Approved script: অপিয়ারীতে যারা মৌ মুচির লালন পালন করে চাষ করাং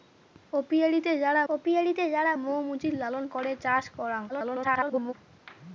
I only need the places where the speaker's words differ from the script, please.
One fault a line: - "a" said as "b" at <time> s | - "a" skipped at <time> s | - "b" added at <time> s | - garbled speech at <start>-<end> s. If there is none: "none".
- "অপিয়ারীতে যারা" added at 1.5 s
- "পালন" skipped at 3.2 s
- garbled speech at 4.3-5.1 s